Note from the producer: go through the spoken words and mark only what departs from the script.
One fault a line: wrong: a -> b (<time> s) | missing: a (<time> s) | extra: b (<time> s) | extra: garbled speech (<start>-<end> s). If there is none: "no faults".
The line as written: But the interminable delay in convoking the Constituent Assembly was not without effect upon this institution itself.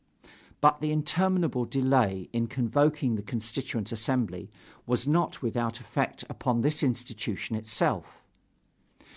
no faults